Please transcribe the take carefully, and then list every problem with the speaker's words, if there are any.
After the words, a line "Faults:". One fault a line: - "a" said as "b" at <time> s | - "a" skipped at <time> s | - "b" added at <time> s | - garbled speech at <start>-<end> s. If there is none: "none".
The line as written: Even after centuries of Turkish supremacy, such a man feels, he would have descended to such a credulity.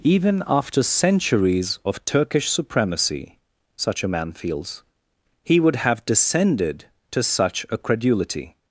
Even after centuries of Turkish supremacy, such a man feels, he would have descended to such a credulity.
Faults:
none